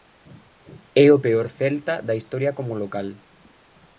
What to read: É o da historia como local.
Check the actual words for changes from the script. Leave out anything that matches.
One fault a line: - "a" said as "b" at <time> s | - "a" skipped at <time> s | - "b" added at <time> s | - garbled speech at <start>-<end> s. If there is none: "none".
- "peor Celta" added at 1.2 s